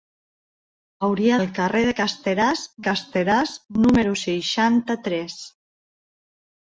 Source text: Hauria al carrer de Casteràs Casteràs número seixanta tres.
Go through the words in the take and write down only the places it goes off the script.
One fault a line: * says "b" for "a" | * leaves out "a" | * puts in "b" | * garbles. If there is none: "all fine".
all fine